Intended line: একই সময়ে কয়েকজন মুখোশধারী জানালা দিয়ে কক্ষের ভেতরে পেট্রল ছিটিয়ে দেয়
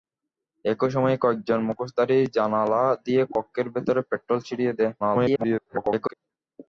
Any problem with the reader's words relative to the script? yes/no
yes